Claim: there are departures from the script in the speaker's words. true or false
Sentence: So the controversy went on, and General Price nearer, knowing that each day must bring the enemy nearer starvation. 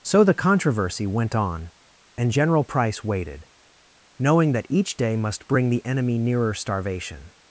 true